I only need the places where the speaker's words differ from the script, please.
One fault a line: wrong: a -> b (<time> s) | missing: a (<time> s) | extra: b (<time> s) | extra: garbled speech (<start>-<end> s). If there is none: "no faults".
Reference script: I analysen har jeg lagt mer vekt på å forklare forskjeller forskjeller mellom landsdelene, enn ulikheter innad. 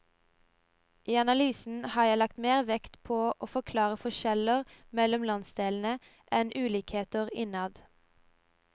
missing: forskjeller (4.7 s)